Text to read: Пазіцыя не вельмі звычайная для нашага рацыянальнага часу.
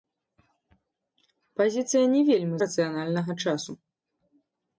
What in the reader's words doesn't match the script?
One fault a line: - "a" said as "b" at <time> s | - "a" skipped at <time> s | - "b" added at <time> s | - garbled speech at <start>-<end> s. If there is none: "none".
- "звычайная для нашага" skipped at 2.6 s